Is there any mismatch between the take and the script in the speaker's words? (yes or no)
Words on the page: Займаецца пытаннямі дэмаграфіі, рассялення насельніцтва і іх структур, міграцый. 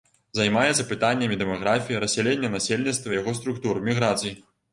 yes